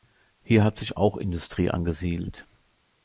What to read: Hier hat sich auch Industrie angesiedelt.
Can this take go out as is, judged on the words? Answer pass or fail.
pass